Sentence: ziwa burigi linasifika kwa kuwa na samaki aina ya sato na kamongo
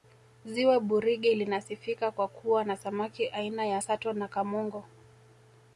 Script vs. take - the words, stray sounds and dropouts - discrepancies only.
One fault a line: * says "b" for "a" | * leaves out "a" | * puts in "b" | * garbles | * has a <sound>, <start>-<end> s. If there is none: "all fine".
all fine